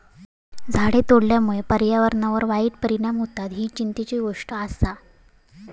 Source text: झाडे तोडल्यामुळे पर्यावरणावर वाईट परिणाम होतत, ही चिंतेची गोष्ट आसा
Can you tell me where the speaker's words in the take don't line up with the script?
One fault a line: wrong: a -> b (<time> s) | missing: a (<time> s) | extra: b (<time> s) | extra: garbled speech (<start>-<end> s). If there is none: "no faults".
no faults